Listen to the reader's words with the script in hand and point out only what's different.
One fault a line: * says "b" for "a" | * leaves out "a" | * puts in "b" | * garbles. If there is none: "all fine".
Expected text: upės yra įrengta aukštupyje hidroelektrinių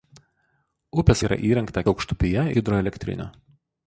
all fine